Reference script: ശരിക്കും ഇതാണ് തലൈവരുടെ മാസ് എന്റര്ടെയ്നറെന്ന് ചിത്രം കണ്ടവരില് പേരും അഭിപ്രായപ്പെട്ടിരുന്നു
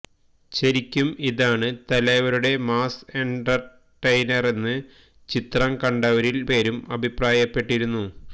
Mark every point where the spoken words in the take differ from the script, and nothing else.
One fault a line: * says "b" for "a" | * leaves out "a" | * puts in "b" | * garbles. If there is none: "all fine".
all fine